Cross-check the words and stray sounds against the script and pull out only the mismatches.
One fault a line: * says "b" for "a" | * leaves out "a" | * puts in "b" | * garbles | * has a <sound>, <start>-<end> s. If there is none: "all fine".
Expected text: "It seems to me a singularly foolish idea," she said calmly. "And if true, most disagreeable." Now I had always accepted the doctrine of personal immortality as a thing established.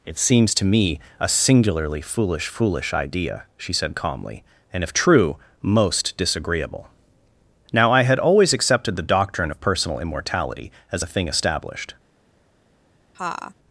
* puts in "foolish"
* has a laugh, 13.1-13.5 s